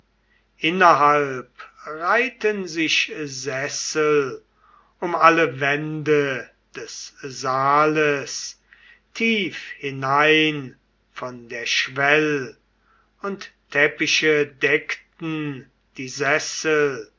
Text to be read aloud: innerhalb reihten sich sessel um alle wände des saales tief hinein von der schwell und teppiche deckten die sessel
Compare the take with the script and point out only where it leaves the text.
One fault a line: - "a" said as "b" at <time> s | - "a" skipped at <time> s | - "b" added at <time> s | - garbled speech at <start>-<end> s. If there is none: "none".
none